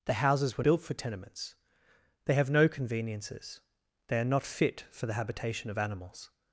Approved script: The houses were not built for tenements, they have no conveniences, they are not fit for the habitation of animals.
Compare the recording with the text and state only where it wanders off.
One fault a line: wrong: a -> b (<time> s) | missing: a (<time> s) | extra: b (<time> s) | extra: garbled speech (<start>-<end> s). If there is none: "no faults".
missing: not (0.6 s)